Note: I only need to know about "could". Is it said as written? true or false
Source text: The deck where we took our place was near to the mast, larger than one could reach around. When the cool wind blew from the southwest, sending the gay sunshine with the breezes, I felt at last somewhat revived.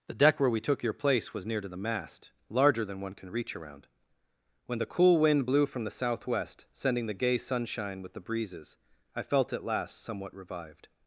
false